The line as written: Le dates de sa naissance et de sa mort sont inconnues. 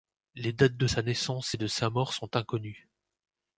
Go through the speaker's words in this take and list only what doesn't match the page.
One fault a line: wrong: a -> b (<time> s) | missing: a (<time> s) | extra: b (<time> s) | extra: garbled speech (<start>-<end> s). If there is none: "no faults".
wrong: Le -> Les (0.3 s)